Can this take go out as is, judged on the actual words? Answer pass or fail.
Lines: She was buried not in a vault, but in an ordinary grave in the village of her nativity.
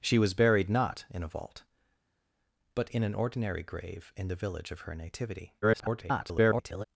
fail